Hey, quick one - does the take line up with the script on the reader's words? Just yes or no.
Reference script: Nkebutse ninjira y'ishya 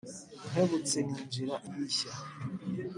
yes